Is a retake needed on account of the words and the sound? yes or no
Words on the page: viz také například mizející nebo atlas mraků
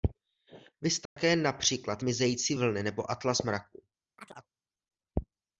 yes